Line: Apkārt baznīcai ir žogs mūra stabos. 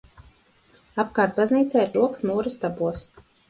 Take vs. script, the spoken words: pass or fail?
pass